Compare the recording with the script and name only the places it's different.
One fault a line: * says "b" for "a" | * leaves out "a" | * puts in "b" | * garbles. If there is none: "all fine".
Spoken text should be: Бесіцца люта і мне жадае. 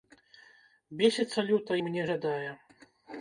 all fine